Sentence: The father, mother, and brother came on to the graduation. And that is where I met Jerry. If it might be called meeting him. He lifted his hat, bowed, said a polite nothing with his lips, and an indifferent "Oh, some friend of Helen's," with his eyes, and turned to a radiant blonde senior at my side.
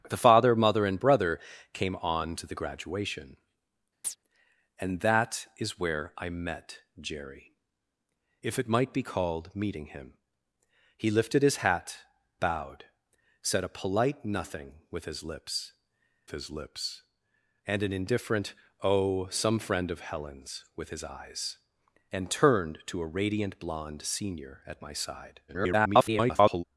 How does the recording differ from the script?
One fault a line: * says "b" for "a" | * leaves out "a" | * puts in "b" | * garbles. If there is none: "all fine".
* puts in "his lips"
* garbles